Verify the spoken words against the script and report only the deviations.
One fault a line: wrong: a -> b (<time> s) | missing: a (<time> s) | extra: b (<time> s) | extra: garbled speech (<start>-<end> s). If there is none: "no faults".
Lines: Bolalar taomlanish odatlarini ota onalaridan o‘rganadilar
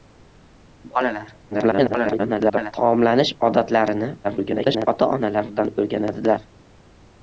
extra: garbled speech (1.5-2.7 s)
extra: garbled speech (4.2-4.9 s)